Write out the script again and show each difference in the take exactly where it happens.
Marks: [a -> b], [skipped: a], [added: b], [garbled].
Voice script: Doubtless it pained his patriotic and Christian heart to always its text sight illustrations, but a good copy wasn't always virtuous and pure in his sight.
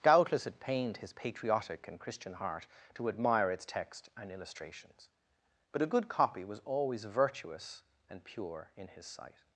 Doubtless it pained his patriotic and Christian heart to [always -> admire] its text [sight -> and] illustrations, but a good copy [wasn't -> was] always virtuous and pure in his sight.